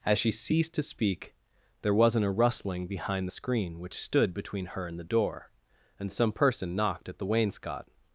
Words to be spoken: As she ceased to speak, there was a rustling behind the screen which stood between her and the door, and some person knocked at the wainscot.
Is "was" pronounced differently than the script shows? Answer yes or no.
yes